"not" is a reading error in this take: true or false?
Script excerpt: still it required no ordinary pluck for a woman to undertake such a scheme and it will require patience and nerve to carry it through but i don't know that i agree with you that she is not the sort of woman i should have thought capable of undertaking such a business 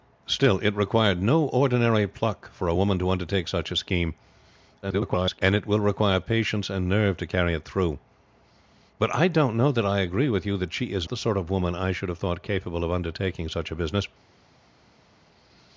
true